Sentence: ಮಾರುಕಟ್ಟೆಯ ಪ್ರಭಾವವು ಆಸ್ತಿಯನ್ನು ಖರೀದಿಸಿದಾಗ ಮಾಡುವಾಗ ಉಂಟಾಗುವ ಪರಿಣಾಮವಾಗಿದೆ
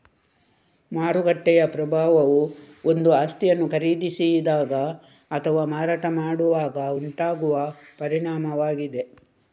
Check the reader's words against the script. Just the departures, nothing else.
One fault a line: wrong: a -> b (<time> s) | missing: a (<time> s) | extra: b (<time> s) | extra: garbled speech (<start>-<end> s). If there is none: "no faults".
extra: ಒಂದು (2.9 s)
extra: ಅಥವಾ ಮಾರಾಟ (5.3 s)